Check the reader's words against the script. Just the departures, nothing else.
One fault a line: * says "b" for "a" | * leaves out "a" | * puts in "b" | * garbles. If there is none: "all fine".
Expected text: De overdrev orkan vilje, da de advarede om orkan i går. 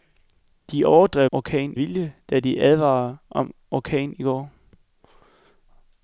all fine